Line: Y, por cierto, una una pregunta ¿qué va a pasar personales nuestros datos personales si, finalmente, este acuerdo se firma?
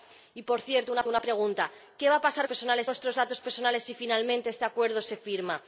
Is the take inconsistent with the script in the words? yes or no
no